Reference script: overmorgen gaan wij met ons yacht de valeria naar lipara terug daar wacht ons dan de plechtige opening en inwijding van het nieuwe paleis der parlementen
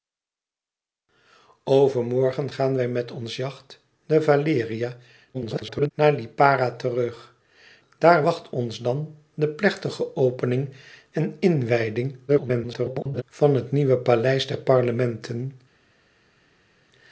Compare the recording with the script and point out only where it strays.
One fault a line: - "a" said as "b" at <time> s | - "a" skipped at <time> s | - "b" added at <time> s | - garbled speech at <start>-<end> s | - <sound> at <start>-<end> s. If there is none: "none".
- garbled speech at 5.3-5.9 s
- garbled speech at 12.3-13.2 s